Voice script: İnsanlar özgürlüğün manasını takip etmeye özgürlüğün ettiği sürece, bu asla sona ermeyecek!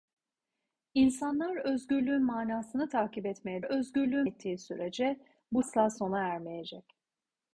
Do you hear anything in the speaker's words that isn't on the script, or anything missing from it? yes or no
no